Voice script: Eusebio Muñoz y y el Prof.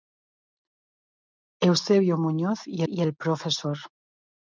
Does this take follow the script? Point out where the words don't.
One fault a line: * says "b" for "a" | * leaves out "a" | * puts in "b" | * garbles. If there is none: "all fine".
all fine